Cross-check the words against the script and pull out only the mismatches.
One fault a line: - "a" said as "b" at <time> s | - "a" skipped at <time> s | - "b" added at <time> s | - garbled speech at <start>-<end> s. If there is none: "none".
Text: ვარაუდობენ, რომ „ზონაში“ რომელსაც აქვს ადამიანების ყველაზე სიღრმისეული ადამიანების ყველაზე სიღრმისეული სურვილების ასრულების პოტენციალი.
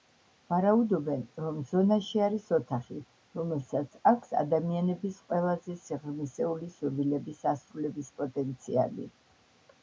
- "არის ოთახი" added at 2.3 s
- "ადამიანების ყველაზე სიღრმისეული" skipped at 6.7 s